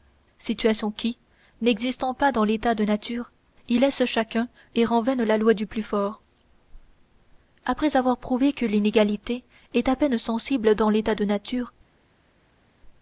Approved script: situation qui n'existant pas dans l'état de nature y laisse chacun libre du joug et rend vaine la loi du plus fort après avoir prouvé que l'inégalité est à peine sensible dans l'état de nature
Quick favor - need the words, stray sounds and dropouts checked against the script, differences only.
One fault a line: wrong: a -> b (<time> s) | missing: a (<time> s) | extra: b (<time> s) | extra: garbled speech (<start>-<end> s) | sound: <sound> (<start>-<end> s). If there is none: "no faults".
missing: libre du joug (4.5 s)